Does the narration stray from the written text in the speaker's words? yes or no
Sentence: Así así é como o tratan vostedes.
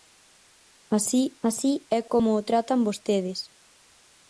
no